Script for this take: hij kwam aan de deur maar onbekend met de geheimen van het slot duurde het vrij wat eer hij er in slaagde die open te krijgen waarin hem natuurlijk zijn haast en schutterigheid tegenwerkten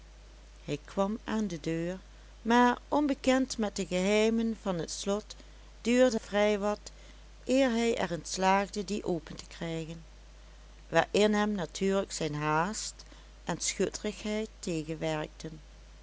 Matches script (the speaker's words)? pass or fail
fail